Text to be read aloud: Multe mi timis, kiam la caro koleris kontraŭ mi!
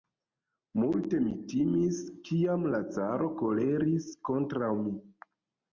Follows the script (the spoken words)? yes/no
yes